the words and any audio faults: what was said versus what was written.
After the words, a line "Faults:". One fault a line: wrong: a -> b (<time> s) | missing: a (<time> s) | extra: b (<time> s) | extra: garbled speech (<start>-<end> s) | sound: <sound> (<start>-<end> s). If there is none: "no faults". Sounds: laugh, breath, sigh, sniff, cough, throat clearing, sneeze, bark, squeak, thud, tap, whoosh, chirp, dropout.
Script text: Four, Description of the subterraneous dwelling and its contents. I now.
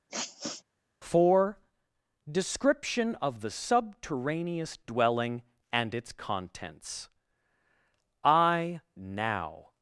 Four, Description of the subterraneous dwelling and its contents. I now.
Faults:
sound: sniff (0.1-0.6 s)